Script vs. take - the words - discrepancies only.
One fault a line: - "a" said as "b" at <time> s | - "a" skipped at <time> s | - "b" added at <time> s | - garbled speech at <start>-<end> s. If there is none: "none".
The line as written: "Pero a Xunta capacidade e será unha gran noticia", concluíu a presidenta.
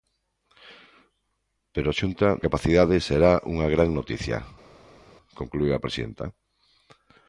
none